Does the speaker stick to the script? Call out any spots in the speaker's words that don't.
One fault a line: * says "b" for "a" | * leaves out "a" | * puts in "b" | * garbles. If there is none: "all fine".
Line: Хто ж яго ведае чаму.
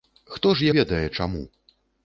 * leaves out "яго"